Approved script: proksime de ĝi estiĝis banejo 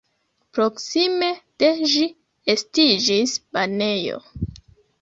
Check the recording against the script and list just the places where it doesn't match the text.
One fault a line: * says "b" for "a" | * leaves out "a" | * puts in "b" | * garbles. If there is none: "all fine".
all fine